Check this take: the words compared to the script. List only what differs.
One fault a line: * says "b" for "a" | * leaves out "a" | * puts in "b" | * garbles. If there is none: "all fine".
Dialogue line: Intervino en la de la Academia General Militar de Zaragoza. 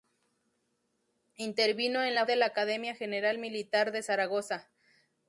all fine